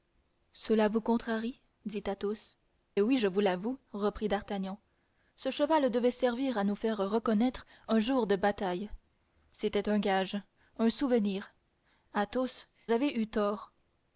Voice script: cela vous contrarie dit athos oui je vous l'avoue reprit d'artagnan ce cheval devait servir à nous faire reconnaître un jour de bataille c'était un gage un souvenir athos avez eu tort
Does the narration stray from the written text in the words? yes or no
no